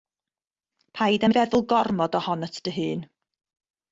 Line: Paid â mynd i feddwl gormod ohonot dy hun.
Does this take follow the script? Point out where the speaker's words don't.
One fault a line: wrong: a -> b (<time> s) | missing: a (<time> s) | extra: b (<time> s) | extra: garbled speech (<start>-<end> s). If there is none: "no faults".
missing: mynd (1.3 s)